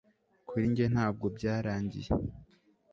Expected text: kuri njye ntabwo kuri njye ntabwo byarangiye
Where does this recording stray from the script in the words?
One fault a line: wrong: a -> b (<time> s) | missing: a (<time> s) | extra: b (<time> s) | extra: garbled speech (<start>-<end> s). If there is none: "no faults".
missing: kuri njye ntabwo (1.2 s)